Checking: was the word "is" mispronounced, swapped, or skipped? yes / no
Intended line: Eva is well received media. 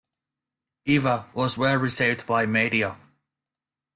yes